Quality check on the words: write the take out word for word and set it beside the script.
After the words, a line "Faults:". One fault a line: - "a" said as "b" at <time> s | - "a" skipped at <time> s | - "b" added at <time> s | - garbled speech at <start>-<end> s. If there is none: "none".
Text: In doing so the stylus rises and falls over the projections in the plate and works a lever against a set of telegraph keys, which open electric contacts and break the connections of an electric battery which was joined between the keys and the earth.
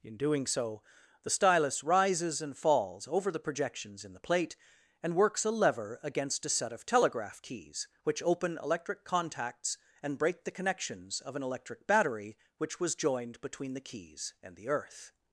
In doing so the stylus rises and falls over the projections in the plate and works a lever against a set of telegraph keys, which open electric contacts and break the connections of an electric battery which was joined between the keys and the earth.
Faults:
none